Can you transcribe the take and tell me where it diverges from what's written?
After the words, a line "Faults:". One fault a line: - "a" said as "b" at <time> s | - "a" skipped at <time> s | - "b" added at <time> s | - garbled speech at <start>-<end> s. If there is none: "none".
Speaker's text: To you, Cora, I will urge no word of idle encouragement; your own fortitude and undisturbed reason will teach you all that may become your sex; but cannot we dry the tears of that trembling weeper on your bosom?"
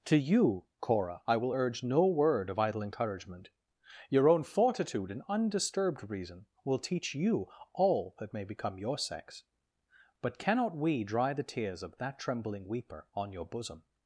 To you, Cora, I will urge no word of idle encouragement; your own fortitude and undisturbed reason will teach you all that may become your sex; but cannot we dry the tears of that trembling weeper on your bosom?"
Faults:
none